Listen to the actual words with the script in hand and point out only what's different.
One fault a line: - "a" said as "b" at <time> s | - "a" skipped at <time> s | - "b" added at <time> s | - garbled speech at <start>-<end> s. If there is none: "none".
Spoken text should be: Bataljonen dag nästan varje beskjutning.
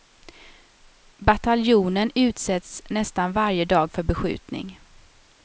- "dag" said as "utsätts" at 2.1 s
- "dag för" added at 3.6 s